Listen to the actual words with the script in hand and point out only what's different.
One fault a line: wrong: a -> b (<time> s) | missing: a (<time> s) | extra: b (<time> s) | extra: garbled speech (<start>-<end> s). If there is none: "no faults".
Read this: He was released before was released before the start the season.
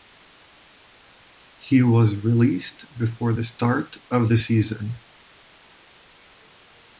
missing: was released before (3.3 s)
extra: of (4.1 s)